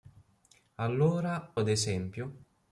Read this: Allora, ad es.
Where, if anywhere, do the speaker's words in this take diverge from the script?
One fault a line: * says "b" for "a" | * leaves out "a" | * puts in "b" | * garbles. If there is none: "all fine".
all fine